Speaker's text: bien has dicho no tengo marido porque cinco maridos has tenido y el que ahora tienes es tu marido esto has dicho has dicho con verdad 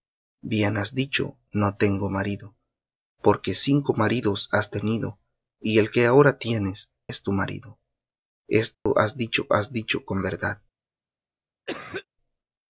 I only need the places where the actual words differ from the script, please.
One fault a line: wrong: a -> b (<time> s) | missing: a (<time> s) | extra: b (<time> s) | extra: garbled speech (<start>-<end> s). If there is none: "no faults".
no faults